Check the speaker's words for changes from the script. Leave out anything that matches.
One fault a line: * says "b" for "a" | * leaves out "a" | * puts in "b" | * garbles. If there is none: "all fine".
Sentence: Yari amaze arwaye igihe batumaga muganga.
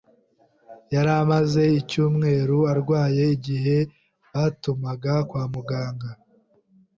* puts in "icyumweru"
* puts in "kwa"